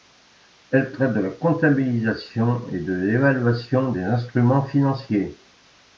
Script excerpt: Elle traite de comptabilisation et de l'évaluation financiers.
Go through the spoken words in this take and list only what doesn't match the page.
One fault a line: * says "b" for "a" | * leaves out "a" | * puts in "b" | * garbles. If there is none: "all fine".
* puts in "la"
* puts in "des instruments"